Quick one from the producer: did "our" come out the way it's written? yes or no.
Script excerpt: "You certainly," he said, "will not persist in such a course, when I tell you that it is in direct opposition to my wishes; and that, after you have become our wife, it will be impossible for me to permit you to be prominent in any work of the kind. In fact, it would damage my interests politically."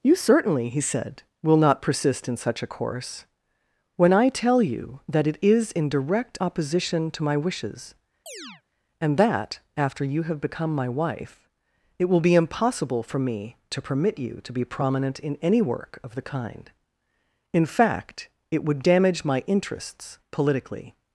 no